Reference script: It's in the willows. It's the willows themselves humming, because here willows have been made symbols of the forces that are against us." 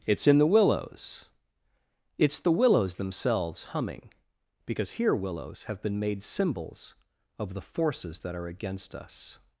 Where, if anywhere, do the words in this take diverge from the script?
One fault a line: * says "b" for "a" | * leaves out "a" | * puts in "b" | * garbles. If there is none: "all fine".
all fine